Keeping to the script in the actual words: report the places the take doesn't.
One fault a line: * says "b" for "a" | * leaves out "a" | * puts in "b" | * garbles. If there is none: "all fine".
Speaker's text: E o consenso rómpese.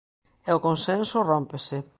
all fine